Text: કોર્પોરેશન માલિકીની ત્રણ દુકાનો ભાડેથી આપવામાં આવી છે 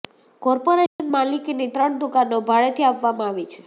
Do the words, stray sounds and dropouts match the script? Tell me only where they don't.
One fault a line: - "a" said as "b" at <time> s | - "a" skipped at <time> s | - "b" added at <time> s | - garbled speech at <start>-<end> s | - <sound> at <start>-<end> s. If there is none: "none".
- dropout at 0.9-1.0 s